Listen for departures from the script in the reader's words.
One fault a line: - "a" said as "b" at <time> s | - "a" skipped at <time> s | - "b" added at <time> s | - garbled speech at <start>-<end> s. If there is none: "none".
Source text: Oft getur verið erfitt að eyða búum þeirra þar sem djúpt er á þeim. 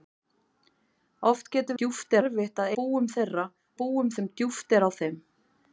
- "verið" said as "djúpt" at 1.8 s
- "eyða" skipped at 2.7 s
- "þar" said as "búum" at 3.8 s